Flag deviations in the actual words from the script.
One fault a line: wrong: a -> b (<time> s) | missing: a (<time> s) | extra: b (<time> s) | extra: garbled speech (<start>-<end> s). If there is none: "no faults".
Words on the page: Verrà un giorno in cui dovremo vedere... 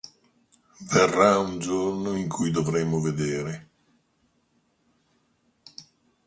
no faults